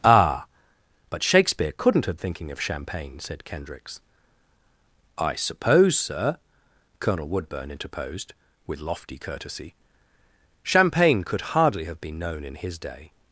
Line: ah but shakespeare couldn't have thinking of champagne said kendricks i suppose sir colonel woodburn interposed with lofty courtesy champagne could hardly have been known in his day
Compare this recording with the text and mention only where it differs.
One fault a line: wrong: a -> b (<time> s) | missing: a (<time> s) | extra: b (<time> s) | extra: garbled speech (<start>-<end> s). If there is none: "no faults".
no faults